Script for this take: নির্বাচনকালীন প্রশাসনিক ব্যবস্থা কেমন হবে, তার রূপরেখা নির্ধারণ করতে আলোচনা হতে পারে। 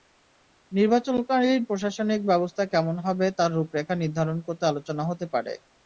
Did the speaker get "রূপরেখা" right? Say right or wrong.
right